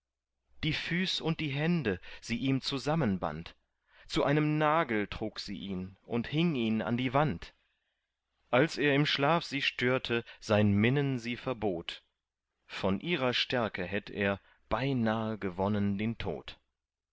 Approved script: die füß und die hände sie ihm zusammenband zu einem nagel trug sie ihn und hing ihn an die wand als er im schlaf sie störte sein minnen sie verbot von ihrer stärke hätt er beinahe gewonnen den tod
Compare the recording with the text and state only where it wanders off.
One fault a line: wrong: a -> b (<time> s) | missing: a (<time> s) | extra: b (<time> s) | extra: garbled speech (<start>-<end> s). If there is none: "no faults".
no faults